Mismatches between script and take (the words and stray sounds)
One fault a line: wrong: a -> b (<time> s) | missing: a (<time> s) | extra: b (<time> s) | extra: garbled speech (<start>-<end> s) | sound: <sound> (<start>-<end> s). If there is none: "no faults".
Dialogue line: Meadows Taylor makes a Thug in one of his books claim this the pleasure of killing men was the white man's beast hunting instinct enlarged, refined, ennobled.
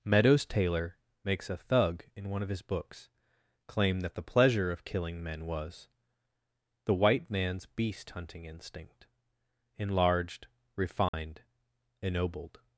wrong: this -> that (4.0 s)
sound: dropout (11.1-11.1 s)